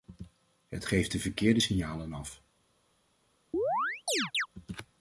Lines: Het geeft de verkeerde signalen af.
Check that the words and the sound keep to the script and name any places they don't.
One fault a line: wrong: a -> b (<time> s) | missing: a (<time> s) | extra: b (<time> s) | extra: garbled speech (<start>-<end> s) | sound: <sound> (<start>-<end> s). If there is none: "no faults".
sound: chirp (3.5-4.5 s)